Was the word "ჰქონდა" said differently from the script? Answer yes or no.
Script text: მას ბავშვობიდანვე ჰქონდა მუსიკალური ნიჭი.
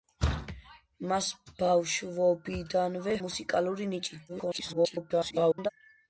yes